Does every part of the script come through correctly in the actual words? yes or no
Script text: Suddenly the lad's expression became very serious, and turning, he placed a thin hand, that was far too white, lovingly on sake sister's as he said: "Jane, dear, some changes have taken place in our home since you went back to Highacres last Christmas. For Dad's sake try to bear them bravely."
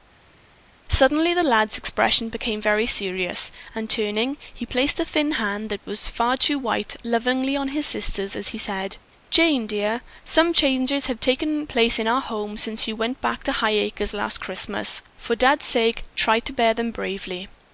no